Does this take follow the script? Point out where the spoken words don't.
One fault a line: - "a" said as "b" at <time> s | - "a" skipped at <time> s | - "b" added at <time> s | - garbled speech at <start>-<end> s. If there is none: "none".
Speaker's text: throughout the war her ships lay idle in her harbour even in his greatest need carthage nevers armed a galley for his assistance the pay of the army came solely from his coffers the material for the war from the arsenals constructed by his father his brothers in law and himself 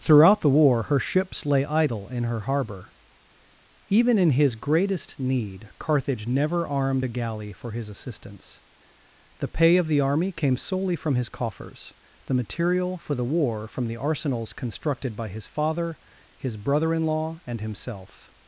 - "nevers" said as "never" at 6.2 s
- "brothers" said as "brother" at 16.5 s